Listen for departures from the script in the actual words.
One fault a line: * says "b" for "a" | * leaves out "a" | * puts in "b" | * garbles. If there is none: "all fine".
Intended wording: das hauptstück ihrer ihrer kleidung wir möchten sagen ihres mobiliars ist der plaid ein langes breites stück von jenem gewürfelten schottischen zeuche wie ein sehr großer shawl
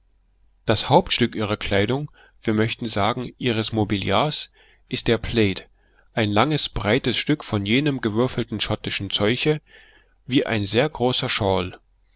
* leaves out "ihrer"